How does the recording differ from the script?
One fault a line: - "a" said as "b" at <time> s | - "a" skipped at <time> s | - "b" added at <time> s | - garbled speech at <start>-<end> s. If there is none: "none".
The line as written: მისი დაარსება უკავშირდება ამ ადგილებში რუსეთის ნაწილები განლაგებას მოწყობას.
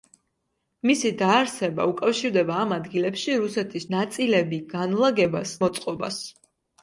none